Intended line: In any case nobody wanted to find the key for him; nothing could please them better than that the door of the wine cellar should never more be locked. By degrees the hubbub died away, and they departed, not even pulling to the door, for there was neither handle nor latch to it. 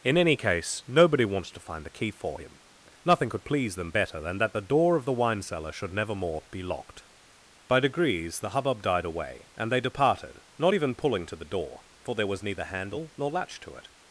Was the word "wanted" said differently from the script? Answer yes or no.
yes